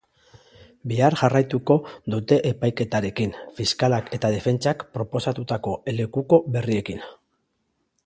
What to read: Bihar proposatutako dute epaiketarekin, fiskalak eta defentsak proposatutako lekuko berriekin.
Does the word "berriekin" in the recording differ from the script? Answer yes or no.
no